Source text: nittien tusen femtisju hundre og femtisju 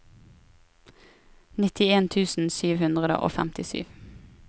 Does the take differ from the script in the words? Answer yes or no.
yes